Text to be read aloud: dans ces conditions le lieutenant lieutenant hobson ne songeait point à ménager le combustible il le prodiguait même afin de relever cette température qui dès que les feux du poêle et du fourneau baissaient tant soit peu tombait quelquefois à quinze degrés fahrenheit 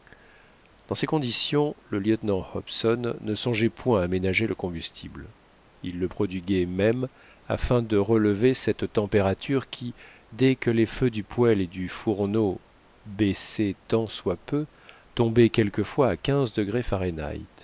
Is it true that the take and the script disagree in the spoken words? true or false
true